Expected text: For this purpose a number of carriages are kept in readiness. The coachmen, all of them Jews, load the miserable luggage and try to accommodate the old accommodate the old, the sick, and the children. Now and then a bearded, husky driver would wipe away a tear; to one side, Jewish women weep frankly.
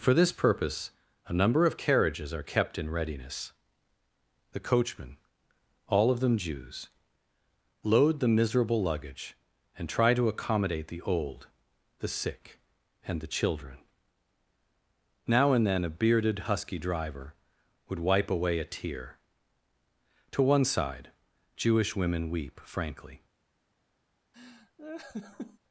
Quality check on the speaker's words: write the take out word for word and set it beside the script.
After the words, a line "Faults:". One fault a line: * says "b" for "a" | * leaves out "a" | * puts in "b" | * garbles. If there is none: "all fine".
For this purpose a number of carriages are kept in readiness. The coachmen, all of them Jews, load the miserable luggage and try to accommodate the old, the sick, and the children. Now and then a bearded, husky driver would wipe away a tear; to one side, Jewish women weep frankly.
Faults:
* leaves out "accommodate the old"